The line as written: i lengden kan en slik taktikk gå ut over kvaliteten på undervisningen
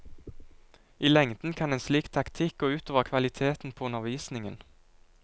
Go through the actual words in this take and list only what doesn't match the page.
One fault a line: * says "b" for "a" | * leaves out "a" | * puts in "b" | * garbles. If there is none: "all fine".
all fine